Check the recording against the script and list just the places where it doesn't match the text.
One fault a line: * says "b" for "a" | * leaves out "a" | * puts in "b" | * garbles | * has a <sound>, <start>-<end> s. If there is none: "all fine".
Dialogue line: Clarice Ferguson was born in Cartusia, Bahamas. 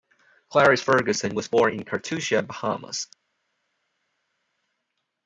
all fine